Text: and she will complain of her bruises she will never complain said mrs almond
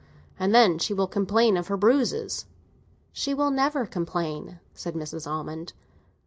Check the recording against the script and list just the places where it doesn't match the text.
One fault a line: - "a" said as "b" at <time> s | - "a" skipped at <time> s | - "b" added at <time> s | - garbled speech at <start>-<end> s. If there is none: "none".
- "then" added at 0.6 s